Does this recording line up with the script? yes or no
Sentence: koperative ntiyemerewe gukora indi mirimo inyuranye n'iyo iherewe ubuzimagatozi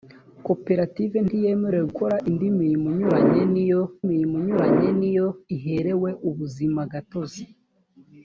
no